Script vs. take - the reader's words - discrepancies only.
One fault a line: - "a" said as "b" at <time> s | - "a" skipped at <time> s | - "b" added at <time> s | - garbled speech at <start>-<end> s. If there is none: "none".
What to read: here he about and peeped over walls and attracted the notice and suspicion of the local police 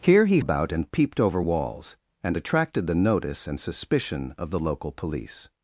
none